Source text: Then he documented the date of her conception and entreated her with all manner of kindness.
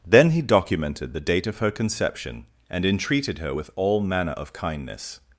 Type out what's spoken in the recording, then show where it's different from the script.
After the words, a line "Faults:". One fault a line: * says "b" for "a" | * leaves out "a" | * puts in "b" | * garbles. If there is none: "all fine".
Then he documented the date of her conception and entreated her with all manner of kindness.
Faults:
all fine